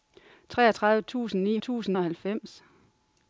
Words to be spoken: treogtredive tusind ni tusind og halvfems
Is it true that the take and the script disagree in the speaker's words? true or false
false